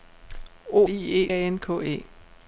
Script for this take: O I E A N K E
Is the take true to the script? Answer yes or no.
yes